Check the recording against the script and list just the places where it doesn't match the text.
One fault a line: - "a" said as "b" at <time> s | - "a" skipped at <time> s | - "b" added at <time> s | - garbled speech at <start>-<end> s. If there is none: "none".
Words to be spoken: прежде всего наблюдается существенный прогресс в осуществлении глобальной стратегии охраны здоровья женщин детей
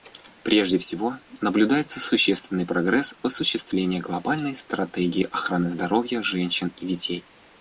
- "и" added at 6.8 s